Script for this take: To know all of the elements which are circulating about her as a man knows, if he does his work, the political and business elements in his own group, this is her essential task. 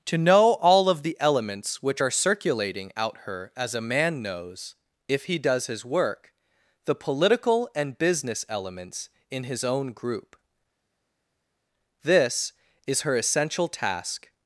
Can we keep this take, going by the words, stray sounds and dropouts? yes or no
no